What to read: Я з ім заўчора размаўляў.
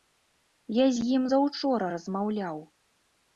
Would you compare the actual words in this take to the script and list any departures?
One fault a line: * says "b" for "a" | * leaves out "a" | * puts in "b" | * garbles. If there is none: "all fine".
all fine